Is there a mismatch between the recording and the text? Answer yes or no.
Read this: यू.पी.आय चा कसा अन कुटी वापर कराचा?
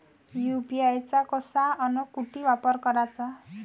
no